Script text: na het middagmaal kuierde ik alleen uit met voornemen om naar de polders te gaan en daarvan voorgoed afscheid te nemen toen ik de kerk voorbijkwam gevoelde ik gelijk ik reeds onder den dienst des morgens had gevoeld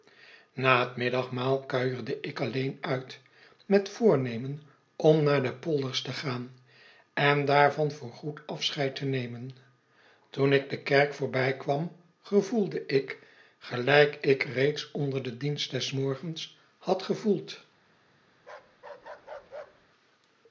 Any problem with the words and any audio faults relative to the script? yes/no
yes